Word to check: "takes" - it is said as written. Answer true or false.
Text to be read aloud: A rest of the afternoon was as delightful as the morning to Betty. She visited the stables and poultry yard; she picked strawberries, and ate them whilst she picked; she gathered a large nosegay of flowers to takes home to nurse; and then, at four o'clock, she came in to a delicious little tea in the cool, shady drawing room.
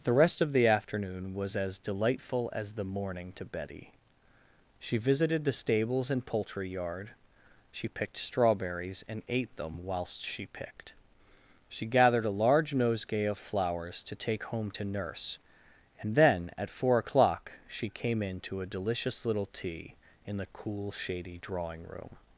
false